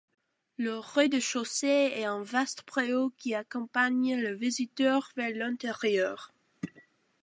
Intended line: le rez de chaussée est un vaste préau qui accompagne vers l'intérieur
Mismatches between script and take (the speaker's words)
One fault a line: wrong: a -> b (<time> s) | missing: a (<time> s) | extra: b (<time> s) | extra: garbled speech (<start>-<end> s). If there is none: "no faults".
extra: le visiteur (4.2 s)